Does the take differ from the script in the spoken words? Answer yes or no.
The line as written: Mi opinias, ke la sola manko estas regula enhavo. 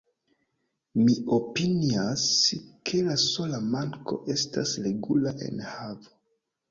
no